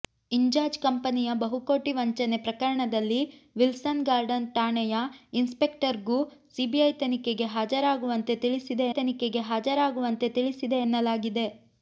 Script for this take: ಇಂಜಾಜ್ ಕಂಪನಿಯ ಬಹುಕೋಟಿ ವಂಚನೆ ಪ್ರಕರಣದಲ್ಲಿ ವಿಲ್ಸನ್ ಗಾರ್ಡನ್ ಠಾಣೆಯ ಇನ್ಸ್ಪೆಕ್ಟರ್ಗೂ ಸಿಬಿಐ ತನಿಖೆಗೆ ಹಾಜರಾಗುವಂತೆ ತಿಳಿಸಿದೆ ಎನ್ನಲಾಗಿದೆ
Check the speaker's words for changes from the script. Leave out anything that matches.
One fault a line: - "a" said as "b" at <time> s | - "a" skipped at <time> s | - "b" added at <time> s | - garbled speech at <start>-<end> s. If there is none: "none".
- "ತನಿಖೆಗೆ ಹಾಜರಾಗುವಂತೆ ತಿಳಿಸಿದೆ" added at 9.0 s